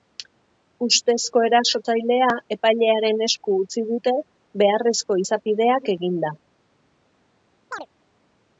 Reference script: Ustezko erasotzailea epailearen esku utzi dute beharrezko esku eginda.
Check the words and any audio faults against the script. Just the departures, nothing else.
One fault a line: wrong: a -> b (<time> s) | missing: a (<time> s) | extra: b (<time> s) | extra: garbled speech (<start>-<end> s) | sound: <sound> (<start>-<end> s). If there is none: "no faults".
wrong: esku -> izapideak (5.3 s)
sound: chirp (7.7-7.9 s)